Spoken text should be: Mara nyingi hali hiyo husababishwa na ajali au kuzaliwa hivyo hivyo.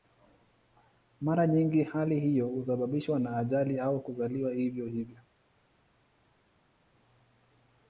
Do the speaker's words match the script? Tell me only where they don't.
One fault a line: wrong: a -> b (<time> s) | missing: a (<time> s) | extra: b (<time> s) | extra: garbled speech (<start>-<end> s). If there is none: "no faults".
no faults